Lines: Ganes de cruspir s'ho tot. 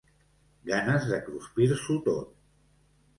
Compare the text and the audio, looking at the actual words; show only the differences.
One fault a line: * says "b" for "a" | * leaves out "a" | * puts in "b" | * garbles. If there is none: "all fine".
all fine